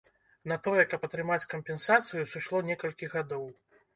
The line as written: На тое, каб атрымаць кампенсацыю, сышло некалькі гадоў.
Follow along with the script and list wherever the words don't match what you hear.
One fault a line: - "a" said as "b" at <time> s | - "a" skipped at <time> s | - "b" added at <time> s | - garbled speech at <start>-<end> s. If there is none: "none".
none